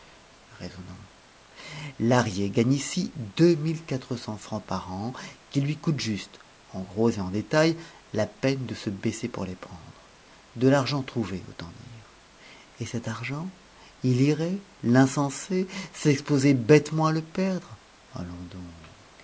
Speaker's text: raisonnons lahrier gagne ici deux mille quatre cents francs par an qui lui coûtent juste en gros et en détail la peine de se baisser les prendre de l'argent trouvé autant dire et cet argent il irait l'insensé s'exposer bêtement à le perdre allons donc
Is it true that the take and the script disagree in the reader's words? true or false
true